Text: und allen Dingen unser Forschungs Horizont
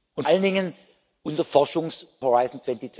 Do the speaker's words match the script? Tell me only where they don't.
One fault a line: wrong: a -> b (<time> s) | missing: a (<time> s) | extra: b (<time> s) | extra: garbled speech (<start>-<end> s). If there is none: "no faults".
no faults